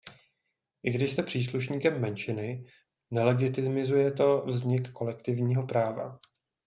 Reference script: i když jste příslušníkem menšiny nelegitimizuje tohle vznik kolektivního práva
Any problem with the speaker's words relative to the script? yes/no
yes